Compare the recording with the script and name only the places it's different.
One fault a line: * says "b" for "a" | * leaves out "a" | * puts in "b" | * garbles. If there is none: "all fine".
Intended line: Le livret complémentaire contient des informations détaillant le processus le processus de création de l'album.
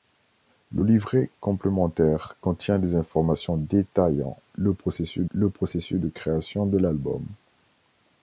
all fine